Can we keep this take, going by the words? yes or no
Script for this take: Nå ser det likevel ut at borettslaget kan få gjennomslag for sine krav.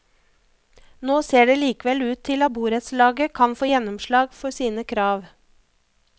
no